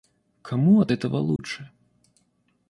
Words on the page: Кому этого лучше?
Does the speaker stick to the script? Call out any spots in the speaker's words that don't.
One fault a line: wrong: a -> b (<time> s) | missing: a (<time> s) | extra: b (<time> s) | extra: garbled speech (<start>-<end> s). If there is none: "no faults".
extra: от (0.8 s)